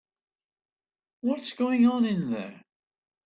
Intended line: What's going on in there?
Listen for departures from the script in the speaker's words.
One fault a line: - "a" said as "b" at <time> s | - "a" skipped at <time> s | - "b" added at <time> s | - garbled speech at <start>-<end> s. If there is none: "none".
none